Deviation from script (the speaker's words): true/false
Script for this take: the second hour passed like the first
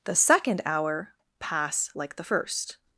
true